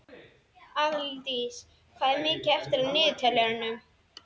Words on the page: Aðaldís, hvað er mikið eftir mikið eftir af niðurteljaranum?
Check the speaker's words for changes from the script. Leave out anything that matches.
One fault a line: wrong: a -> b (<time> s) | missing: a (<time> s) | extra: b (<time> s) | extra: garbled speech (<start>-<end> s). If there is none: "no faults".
missing: mikið eftir (2.9 s)